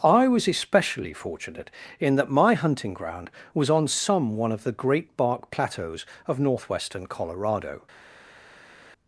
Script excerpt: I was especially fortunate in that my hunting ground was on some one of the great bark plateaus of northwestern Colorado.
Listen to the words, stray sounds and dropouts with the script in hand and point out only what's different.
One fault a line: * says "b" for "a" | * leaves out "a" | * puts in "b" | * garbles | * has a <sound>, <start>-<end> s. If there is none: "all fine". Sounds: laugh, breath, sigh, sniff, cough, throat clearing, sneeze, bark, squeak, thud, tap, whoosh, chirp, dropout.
all fine